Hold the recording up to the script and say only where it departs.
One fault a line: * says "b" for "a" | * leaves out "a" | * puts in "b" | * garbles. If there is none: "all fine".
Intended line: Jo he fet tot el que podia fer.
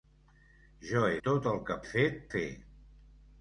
* leaves out "fet"
* says "fet" for "podia"